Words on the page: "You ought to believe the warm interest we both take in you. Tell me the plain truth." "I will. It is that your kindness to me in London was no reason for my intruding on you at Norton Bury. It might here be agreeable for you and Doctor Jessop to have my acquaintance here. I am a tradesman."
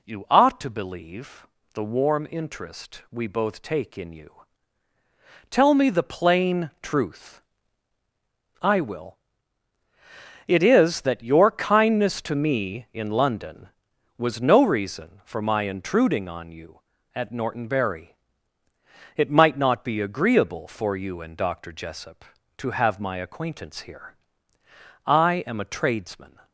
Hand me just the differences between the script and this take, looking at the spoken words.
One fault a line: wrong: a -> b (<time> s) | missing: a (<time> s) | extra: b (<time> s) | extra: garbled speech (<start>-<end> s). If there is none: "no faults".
wrong: here -> not (19.6 s)